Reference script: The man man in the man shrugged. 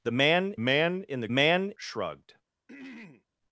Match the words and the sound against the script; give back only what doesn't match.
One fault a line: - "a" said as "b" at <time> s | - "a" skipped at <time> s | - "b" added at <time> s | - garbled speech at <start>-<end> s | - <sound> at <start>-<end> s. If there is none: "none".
- throat clearing at 2.7-3.2 s